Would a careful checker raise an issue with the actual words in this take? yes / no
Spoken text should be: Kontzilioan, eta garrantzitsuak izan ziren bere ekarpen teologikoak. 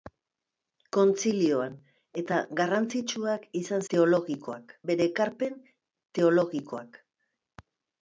yes